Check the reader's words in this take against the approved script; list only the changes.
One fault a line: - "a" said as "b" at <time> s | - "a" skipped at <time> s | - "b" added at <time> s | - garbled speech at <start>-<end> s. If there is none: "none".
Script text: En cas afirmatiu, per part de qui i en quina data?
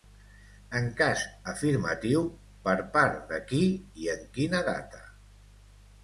none